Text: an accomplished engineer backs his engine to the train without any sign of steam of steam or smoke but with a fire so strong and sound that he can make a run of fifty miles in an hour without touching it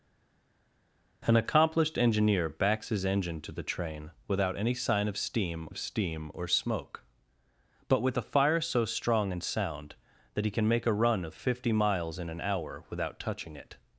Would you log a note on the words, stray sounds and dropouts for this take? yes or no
no